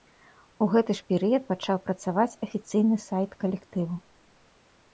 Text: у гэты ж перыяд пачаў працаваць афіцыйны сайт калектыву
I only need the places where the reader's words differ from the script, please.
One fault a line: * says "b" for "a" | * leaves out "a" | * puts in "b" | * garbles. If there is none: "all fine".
all fine